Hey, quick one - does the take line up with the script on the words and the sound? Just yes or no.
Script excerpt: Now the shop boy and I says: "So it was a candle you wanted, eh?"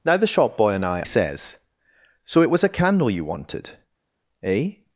yes